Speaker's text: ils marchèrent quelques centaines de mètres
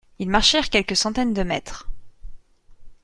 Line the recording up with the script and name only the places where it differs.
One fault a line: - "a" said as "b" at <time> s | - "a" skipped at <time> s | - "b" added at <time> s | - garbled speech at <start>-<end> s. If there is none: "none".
none